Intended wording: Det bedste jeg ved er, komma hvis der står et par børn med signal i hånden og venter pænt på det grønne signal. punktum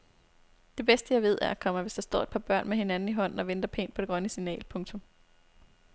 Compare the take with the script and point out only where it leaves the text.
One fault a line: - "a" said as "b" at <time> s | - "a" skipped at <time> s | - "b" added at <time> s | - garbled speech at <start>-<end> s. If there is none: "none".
- "signal" said as "hinanden" at 2.8 s